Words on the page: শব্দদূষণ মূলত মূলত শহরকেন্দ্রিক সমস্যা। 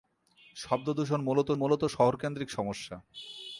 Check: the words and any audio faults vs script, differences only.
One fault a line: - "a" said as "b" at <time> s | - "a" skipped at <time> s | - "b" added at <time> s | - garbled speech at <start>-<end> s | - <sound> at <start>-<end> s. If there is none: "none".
none